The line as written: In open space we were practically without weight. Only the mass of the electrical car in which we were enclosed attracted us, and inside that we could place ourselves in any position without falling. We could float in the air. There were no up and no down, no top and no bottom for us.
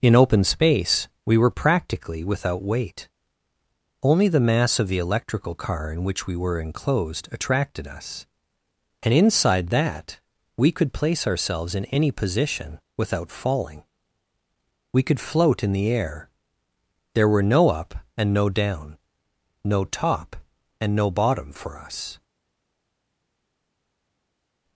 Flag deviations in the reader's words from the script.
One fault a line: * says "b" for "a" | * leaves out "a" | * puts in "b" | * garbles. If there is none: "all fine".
all fine